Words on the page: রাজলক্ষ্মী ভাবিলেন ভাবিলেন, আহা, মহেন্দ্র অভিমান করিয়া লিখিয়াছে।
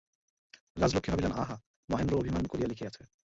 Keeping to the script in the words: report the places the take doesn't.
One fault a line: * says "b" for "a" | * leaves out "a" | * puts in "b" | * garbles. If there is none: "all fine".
* leaves out "ভাবিলেন"